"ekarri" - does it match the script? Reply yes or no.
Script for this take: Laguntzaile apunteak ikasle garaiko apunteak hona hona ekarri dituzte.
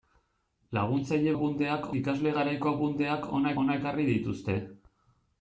yes